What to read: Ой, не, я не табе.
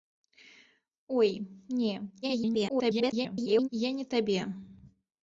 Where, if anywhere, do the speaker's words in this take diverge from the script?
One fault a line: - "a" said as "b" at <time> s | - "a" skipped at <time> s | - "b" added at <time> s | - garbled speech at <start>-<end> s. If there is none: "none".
- garbled speech at 2.2-3.7 s